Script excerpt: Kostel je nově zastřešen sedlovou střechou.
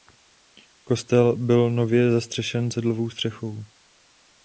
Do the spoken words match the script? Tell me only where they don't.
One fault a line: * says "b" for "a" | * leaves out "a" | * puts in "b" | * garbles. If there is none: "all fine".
* says "byl" for "je"